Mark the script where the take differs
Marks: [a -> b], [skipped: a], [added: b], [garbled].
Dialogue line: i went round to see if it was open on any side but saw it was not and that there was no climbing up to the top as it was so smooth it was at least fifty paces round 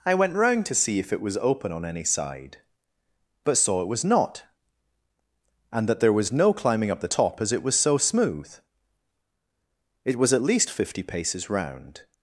i went round to see if it was open on any side but saw it was not and that there was no climbing up [skipped: to] the top as it was so smooth it was at least fifty paces round